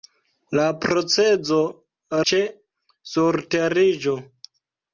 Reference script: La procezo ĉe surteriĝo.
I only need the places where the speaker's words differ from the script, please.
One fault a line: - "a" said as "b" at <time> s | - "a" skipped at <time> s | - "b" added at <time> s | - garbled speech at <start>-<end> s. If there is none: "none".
none